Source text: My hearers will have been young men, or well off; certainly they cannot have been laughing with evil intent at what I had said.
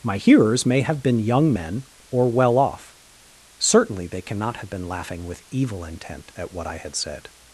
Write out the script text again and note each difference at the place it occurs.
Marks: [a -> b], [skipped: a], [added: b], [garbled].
My hearers [will -> may] have been young men, or well off; certainly they cannot have been laughing with evil intent at what I had said.